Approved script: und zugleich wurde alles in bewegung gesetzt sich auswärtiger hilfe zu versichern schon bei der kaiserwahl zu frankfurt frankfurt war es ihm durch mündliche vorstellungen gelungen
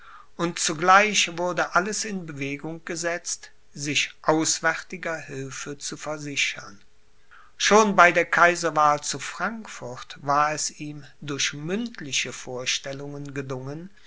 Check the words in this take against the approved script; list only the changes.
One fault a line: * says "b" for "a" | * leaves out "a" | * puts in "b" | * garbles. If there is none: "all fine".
* leaves out "frankfurt"